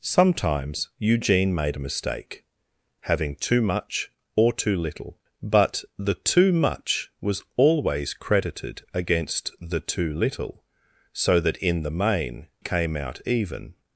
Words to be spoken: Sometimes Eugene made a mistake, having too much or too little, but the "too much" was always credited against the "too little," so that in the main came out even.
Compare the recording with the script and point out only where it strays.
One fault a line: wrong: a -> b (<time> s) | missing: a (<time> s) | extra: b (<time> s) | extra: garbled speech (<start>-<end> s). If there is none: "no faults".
no faults